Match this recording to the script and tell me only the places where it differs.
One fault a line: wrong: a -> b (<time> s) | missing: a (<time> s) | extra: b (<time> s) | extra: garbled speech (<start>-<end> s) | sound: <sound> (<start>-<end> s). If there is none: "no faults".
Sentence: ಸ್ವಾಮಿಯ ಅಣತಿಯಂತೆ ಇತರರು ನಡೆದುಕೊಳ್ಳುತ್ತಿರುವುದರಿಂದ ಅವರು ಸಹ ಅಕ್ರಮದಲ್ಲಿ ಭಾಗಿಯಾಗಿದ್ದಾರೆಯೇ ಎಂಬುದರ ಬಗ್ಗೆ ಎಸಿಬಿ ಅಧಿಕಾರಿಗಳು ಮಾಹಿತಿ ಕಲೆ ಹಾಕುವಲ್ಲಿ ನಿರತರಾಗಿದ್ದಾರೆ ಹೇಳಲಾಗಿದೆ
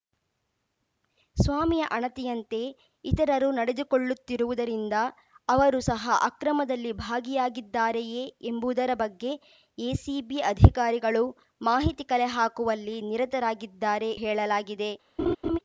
sound: laugh (15.2-15.6 s)